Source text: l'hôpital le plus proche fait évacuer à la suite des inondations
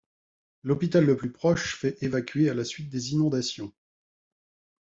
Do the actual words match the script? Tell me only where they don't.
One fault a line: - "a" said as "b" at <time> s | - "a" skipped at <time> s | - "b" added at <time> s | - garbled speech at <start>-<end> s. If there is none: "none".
none